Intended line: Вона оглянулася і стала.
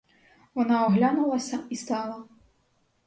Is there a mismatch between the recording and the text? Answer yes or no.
no